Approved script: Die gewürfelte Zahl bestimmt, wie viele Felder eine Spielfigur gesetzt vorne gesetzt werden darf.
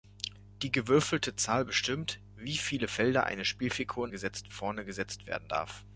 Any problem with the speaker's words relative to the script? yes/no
no